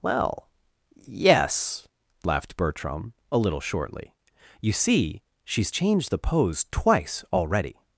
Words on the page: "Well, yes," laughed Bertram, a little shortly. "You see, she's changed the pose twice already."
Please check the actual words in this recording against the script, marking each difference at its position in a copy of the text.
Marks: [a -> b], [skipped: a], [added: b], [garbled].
"Well, yes," laughed Bertram, a little shortly. "You see, she's changed the pose twice already."